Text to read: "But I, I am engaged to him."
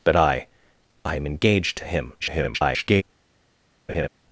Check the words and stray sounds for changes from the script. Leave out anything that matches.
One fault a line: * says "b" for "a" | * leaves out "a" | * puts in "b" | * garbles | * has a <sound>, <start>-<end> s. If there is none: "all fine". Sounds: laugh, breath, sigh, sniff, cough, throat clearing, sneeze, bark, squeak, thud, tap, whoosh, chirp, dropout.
* garbles
* has a laugh, 3.9-4.1 s